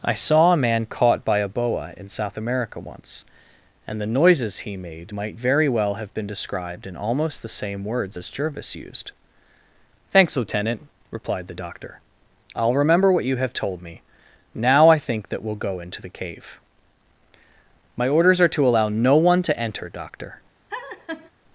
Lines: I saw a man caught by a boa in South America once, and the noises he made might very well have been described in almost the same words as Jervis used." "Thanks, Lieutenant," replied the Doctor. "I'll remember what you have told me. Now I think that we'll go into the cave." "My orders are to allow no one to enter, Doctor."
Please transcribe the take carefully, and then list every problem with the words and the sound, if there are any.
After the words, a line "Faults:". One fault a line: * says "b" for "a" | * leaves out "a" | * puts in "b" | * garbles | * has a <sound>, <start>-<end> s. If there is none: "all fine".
I saw a man caught by a boa in South America once, and the noises he made might very well have been described in almost the same words as Jervis used." "Thanks, Lieutenant," replied the Doctor. "I'll remember what you have told me. Now I think that we'll go into the cave." "My orders are to allow no one to enter, Doctor."
Faults:
* has a laugh, 20.7-21.3 s